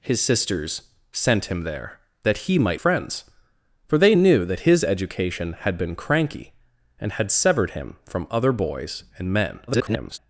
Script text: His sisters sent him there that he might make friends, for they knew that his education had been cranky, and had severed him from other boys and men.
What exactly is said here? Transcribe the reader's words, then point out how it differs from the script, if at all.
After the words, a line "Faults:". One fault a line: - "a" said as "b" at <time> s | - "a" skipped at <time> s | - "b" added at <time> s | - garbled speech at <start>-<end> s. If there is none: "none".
His sisters sent him there that he might friends, for they knew that his education had been cranky, and had severed him from other boys and men. [garbled]
Faults:
- "make" skipped at 2.8 s
- garbled speech at 9.7-10.2 s